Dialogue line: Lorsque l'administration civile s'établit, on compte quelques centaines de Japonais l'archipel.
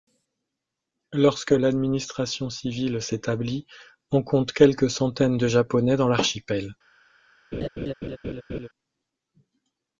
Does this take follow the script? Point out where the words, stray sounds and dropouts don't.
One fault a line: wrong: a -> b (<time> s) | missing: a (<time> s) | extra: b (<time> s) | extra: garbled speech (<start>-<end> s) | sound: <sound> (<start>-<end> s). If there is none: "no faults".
extra: dans (6.0 s)
sound: laugh (7.5-8.7 s)